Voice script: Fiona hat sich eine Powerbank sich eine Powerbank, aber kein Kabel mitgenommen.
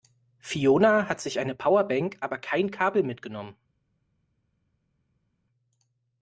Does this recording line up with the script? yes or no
no